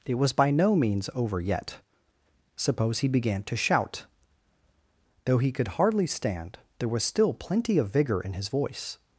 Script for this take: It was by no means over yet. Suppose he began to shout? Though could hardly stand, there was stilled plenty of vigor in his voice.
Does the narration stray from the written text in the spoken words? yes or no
yes